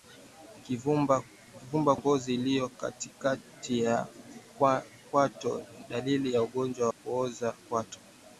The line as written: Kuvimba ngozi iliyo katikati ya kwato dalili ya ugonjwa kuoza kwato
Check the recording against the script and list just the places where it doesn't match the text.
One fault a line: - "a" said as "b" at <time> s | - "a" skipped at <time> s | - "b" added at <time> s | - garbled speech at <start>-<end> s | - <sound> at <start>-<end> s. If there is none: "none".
none